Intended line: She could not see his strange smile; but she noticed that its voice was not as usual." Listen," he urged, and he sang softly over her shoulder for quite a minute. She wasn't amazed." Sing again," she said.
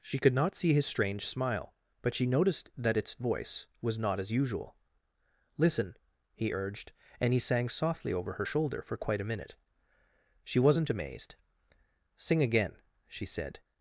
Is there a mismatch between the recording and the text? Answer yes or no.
no